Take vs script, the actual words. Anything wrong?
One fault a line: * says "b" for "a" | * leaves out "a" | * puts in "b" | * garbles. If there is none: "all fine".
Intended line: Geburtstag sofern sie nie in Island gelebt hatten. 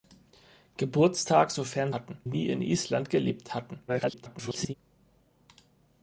* says "hatten" for "sie"
* garbles